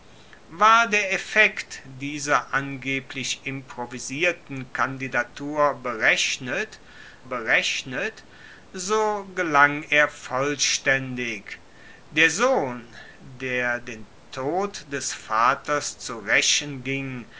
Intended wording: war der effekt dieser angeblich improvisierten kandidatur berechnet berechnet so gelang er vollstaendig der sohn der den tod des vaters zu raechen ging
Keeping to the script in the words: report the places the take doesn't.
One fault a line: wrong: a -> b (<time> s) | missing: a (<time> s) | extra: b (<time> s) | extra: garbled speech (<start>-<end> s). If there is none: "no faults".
no faults